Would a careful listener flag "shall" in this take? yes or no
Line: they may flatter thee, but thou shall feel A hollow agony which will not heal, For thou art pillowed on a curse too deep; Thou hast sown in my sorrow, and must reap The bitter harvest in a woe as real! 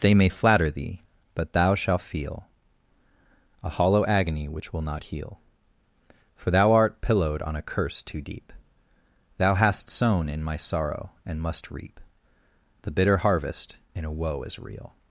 yes